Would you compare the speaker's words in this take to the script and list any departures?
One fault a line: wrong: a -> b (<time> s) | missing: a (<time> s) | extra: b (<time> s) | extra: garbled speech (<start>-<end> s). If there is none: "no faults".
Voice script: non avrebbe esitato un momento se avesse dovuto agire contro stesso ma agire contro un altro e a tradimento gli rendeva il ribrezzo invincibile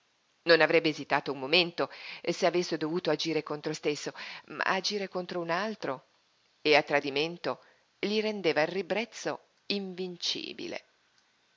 no faults